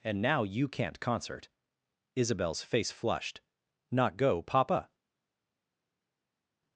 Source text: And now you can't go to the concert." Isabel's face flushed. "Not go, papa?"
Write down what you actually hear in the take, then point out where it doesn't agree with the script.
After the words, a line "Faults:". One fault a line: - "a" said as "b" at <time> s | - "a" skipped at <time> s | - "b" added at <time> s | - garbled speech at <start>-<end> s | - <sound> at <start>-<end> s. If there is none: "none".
And now you can't concert." Isabel's face flushed. "Not go, papa?"
Faults:
- "go to the" skipped at 1.0 s